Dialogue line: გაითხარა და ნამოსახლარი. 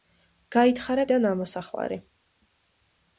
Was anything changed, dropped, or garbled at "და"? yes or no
no